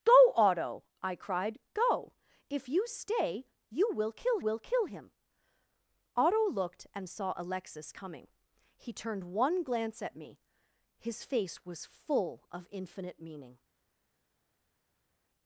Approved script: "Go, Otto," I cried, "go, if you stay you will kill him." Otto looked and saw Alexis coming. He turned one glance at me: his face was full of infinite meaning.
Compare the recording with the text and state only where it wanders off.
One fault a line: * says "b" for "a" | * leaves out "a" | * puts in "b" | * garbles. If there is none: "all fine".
* puts in "will kill"